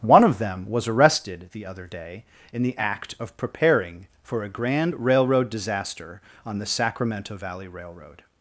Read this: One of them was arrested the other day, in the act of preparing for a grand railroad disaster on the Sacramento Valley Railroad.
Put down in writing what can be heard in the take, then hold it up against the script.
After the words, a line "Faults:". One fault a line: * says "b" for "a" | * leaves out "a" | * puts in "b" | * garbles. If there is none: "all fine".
One of them was arrested the other day, in the act of preparing for a grand railroad disaster on the Sacramento Valley Railroad.
Faults:
all fine